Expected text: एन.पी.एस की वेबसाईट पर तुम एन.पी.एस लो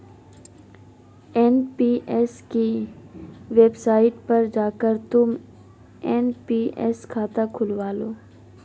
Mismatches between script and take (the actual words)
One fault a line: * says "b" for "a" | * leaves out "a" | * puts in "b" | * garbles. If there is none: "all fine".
* puts in "जाकर"
* puts in "खाता खुलवा"